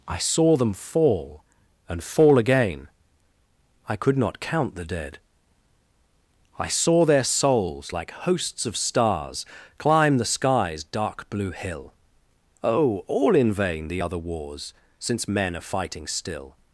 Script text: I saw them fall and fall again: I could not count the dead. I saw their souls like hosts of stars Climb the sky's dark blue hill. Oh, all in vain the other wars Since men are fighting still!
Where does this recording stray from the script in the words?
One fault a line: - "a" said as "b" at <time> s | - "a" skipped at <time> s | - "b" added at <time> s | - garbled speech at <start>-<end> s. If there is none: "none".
none